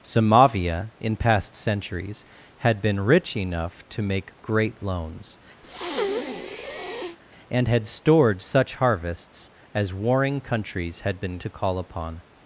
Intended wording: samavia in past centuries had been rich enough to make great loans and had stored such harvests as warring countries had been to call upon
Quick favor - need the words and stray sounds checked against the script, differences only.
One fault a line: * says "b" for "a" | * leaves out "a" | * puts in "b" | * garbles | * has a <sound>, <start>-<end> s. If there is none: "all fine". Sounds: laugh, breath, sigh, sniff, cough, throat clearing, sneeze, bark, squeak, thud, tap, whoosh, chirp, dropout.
* has a breath, 5.6-7.2 s